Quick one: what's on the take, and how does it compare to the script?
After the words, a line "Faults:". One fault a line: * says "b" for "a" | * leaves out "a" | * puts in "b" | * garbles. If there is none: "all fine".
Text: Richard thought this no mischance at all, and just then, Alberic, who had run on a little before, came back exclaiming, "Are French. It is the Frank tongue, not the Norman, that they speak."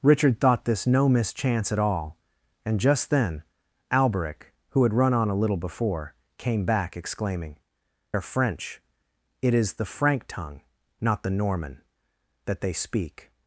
Richard thought this no mischance at all, and just then, Alberic, who had run on a little before, came back exclaiming, "Are French. It is the Frank tongue, not the Norman, that they speak."
Faults:
all fine